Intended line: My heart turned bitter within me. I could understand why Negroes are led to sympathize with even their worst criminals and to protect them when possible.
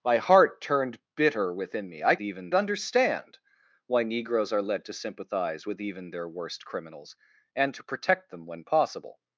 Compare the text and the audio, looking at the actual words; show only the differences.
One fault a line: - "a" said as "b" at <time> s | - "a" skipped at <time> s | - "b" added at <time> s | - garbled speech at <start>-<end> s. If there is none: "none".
- "could" said as "even" at 2.2 s